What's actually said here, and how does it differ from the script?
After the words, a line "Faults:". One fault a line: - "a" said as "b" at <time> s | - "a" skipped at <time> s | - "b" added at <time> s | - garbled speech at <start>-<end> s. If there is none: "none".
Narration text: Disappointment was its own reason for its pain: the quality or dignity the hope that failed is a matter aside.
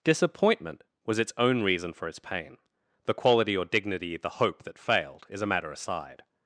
Disappointment was its own reason for its pain: the quality or dignity the hope that failed is a matter aside.
Faults:
none